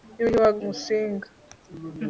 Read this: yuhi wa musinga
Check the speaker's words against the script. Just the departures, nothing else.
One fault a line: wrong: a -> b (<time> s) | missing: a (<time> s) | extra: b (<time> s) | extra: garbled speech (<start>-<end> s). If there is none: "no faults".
no faults